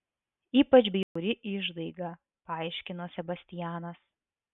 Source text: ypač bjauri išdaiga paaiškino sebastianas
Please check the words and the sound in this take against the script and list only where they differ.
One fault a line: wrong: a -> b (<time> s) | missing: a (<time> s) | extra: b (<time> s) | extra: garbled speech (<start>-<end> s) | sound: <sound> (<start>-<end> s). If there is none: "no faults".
sound: dropout (1.0-1.2 s)